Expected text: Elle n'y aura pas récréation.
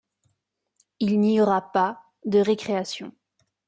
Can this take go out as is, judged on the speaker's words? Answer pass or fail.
fail